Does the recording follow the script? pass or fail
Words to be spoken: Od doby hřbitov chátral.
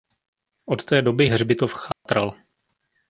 fail